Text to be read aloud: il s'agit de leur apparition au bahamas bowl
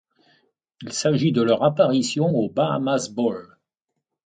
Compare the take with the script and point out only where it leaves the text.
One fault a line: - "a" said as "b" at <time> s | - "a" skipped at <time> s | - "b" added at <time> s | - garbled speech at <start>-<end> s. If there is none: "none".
none